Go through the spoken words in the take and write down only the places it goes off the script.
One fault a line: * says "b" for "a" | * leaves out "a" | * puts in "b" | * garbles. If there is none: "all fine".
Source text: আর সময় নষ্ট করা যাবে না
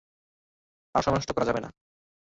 all fine